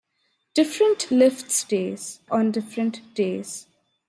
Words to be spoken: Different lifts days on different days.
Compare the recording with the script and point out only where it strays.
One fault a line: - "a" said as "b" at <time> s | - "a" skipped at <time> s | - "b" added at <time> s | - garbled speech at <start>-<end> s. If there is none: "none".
none